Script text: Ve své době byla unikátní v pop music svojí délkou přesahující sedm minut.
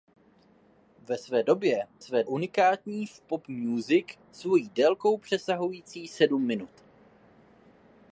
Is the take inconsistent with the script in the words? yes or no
yes